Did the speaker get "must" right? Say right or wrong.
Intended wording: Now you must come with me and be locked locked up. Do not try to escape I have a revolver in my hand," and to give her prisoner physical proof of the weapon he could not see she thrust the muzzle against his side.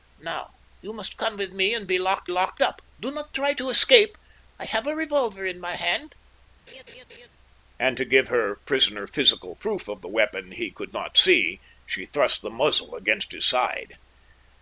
right